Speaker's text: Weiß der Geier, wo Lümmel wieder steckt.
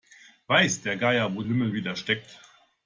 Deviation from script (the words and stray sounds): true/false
false